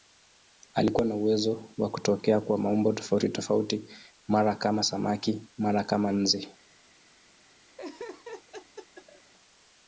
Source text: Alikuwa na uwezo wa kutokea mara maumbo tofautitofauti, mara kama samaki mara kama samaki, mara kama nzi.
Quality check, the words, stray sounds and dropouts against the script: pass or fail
fail